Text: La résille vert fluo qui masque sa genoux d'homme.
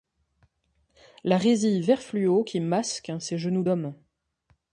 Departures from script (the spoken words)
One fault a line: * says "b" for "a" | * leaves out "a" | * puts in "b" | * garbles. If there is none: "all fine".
* says "ses" for "sa"